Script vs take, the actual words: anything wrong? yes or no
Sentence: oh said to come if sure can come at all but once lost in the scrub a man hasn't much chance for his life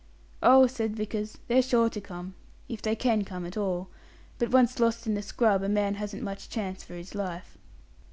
yes